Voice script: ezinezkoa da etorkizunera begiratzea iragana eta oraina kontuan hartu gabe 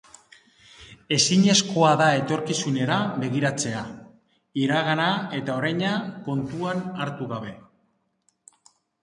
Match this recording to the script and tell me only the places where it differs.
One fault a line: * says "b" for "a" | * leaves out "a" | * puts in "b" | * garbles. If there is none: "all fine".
all fine